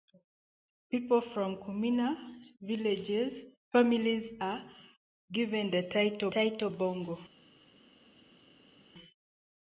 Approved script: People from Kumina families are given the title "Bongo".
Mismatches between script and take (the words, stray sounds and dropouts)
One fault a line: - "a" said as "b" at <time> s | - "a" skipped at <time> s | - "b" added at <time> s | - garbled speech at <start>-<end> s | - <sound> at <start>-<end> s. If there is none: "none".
- "title" added at 6.3 s